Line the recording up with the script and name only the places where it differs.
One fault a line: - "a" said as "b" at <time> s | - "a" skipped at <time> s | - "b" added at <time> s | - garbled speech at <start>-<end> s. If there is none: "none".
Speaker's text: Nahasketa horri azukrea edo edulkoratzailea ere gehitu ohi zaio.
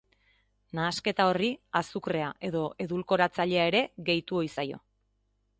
none